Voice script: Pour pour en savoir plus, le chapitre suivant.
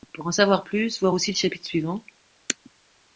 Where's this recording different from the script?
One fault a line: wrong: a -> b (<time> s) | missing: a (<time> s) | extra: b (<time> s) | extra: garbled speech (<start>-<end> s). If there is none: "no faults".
missing: pour (0.2 s)
extra: voir aussi (1.0 s)